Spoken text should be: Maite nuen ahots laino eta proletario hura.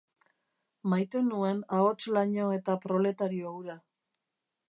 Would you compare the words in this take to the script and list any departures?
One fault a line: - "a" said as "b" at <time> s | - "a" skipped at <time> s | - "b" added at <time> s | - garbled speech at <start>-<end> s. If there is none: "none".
none